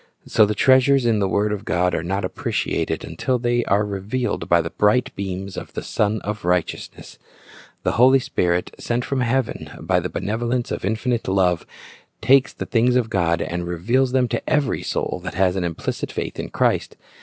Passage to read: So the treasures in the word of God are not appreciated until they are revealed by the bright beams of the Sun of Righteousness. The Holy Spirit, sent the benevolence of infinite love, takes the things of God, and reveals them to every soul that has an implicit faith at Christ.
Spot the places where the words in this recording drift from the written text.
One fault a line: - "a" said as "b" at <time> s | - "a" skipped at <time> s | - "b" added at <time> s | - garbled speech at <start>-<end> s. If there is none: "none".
- "from heaven by" added at 9.0 s
- "at" said as "in" at 16.4 s